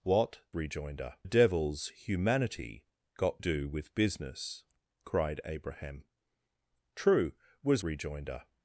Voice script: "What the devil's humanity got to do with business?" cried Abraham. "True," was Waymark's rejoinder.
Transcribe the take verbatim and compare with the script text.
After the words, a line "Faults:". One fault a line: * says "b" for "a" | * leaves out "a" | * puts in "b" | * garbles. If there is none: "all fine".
"What rejoinder devil's humanity got do with business?" cried Abraham. "True," was Rejoinder.
Faults:
* says "rejoinder" for "the"
* leaves out "to"
* leaves out "Waymark's"